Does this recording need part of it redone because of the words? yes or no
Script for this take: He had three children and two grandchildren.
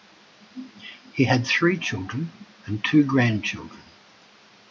no